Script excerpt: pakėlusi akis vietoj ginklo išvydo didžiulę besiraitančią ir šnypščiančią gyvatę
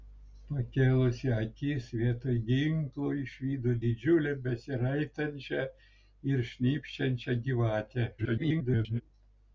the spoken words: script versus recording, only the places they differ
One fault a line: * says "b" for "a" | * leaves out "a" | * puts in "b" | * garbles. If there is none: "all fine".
* garbles